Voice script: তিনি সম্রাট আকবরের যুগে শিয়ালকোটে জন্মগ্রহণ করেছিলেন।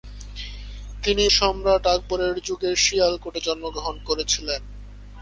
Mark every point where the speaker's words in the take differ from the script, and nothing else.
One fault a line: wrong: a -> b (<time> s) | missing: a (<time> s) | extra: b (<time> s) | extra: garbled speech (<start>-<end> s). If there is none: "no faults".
no faults